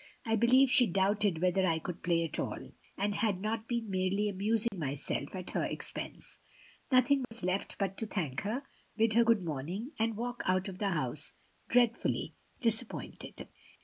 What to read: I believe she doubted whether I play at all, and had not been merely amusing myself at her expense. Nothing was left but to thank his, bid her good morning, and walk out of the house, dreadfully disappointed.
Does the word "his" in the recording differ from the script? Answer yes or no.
yes